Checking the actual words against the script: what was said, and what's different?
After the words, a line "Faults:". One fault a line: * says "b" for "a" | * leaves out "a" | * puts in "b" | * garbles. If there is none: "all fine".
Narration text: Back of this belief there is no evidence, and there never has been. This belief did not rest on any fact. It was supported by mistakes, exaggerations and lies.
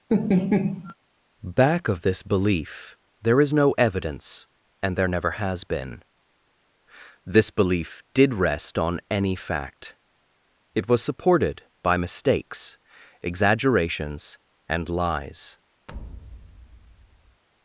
Back of this belief there is no evidence, and there never has been. This belief did rest on any fact. It was supported by mistakes, exaggerations and lies.
Faults:
* leaves out "not"